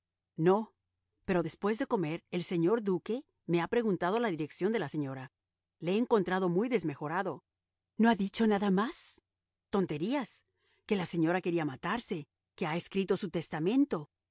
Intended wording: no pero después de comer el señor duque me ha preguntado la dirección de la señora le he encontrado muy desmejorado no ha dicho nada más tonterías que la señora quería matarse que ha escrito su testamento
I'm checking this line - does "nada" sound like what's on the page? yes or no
yes